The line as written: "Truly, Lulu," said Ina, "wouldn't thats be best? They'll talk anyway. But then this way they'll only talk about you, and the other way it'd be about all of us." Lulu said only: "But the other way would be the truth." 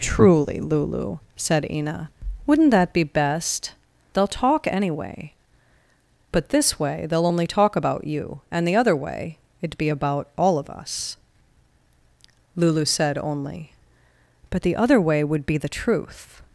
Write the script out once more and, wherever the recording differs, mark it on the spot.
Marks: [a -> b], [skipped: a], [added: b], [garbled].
"Truly, Lulu," said Ina, "wouldn't [thats -> that] be best? They'll talk anyway. But [skipped: then] this way they'll only talk about you, and the other way it'd be about all of us." Lulu said only: "But the other way would be the truth."